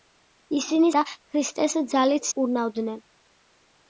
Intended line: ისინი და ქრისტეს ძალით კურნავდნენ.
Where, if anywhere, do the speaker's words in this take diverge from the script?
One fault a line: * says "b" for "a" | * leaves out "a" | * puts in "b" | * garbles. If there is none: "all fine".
all fine